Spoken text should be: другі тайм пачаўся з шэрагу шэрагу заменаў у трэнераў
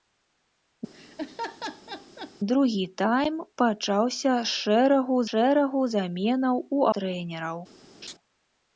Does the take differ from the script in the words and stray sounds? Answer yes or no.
yes